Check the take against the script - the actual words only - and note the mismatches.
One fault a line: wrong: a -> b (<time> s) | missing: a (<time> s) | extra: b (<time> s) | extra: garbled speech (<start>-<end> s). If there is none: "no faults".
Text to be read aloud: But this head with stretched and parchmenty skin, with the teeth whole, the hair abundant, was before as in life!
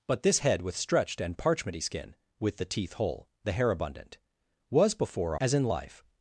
no faults